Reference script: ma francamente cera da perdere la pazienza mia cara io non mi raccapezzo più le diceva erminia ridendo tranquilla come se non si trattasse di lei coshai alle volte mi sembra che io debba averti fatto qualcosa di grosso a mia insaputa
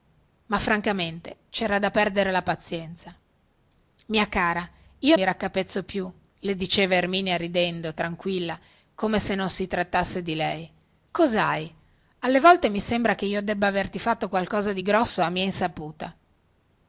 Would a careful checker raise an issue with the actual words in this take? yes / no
yes